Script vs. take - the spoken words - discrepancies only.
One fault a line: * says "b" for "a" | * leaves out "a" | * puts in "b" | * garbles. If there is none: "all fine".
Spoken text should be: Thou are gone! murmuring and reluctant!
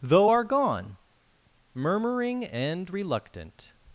* says "Though" for "Thou"